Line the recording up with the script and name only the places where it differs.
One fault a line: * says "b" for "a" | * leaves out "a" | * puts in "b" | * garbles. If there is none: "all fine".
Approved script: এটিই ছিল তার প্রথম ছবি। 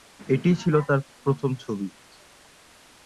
all fine